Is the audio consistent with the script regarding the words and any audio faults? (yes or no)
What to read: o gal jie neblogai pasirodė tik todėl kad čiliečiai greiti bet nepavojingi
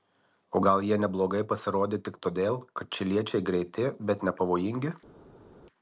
yes